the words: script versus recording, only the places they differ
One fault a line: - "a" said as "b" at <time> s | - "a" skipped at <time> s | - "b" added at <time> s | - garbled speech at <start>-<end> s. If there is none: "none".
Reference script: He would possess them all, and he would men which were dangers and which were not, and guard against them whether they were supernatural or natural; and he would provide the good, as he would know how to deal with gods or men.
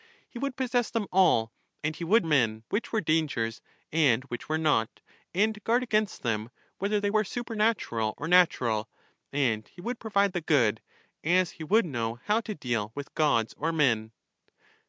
none